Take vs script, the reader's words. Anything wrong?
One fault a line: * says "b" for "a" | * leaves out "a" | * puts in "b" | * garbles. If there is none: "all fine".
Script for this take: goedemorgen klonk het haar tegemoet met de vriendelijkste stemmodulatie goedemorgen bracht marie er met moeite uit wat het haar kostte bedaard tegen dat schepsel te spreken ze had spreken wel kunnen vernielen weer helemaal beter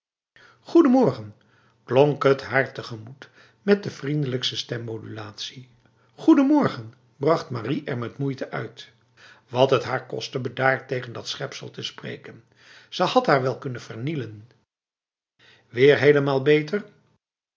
* says "haar" for "spreken"